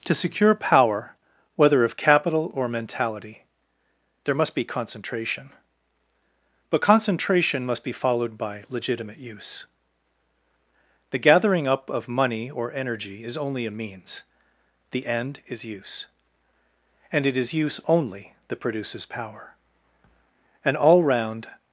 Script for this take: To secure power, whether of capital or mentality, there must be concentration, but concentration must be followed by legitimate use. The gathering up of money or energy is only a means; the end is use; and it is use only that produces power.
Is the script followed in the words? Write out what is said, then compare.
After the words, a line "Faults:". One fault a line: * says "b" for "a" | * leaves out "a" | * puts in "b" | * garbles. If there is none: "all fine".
To secure power, whether of capital or mentality, there must be concentration, but concentration must be followed by legitimate use. The gathering up of money or energy is only a means; the end is use; and it is use only that produces power. An all round
Faults:
* puts in "An all round"